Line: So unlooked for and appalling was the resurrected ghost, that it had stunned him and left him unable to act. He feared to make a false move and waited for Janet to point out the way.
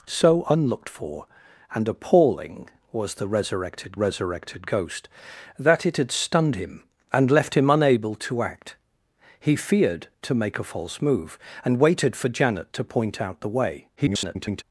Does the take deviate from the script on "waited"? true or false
false